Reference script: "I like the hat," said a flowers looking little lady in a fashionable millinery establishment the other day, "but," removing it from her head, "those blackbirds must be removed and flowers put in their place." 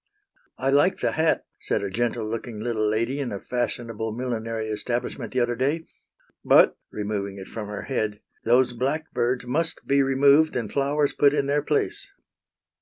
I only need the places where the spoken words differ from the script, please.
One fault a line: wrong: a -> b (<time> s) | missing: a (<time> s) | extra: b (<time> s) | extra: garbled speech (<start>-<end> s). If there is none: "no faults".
wrong: flowers -> gentle (1.9 s)